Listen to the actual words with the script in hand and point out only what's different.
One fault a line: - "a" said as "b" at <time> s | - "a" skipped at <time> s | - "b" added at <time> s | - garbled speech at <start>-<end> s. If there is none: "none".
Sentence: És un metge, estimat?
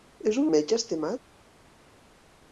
none